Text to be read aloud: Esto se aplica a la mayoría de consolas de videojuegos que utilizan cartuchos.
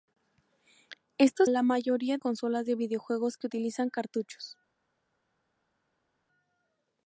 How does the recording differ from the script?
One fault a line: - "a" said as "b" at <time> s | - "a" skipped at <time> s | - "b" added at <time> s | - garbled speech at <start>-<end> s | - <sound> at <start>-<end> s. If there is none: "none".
- "se aplica" skipped at 1.4 s
- "de" skipped at 2.2 s